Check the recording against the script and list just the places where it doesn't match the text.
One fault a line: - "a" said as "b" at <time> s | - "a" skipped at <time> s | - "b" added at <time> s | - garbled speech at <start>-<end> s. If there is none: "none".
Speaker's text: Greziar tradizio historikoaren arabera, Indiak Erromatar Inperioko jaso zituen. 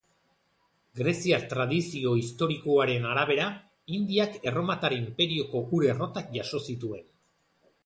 - "ur errotak" added at 5.8 s